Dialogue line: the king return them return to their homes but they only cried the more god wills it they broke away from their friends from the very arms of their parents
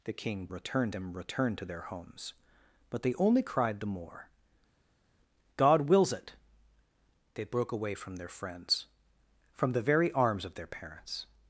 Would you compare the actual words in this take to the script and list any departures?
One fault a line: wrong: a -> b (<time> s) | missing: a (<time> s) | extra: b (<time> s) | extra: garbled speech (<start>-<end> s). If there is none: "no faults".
no faults